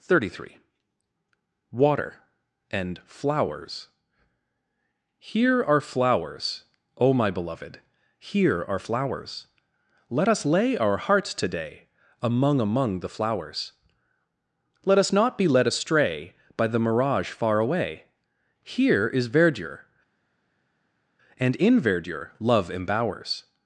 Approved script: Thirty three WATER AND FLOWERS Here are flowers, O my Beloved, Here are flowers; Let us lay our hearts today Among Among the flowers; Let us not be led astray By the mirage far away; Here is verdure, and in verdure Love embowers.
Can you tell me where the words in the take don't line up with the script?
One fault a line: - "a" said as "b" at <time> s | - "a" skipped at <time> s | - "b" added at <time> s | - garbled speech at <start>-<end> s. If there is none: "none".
none